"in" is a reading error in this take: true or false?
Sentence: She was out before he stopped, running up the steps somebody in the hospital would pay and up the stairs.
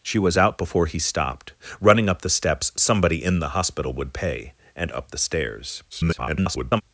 false